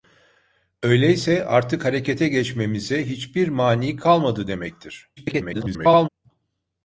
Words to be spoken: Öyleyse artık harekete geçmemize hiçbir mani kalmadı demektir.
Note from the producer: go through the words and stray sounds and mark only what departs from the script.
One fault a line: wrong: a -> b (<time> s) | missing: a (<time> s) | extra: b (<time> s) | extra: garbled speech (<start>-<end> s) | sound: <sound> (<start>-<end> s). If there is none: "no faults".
extra: garbled speech (5.2-6.1 s)